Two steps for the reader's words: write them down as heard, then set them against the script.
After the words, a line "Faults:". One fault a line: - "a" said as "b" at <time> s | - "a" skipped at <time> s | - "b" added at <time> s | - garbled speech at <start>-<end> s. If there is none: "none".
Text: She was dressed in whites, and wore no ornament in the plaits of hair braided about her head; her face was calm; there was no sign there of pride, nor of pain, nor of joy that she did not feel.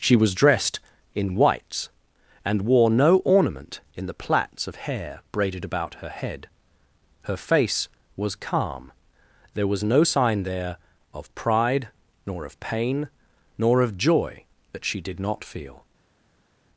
She was dressed in whites, and wore no ornament in the plaits of hair braided about her head; her face was calm; there was no sign there of pride, nor of pain, nor of joy that she did not feel.
Faults:
none